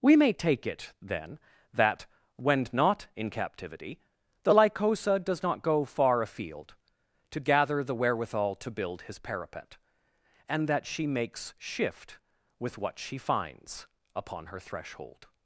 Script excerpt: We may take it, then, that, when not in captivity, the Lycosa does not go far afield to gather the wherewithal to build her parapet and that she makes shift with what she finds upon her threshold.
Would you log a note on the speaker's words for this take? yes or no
yes